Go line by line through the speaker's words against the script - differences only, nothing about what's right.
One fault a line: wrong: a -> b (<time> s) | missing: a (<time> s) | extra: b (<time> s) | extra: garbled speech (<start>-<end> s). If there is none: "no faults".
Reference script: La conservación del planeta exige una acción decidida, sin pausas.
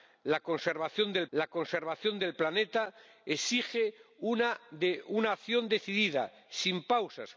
extra: la conservación del (1.3 s)